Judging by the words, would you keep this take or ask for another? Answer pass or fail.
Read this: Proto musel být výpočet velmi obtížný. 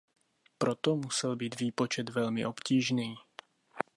pass